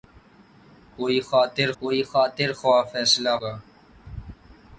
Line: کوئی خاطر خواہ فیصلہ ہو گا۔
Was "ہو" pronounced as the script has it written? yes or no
no